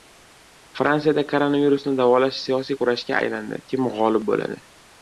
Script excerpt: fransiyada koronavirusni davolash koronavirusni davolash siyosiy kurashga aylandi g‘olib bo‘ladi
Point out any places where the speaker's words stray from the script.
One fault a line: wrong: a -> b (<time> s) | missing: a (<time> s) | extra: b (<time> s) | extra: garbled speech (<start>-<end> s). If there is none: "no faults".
missing: koronavirusni davolash (2.4 s)
extra: kim (3.7 s)